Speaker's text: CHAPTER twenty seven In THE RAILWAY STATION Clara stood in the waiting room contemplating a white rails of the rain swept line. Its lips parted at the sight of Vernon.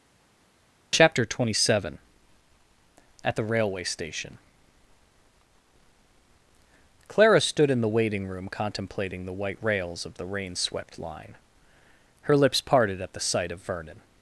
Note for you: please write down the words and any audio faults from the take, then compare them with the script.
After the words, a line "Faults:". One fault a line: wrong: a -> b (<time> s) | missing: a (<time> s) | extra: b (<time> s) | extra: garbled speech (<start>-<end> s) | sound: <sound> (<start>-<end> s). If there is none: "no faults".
CHAPTER twenty seven AT THE RAILWAY STATION Clara stood in the waiting room contemplating the white rails of the rain swept line. Her lips parted at the sight of Vernon.
Faults:
wrong: In -> AT (3.2 s)
wrong: a -> the (9.2 s)
wrong: Its -> Her (12.2 s)